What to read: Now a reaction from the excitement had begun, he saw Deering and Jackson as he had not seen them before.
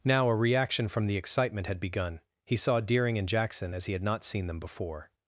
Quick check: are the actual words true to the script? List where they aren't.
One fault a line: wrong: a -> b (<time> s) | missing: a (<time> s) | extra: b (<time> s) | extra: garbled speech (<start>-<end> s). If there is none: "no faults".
no faults